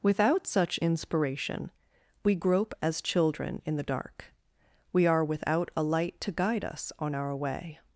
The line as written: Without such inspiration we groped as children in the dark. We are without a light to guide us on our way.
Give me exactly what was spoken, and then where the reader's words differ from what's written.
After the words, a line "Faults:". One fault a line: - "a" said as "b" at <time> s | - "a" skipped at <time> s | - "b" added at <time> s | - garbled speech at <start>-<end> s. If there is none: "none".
Without such inspiration we grope as children in the dark. We are without a light to guide us on our way.
Faults:
- "groped" said as "grope" at 2.3 s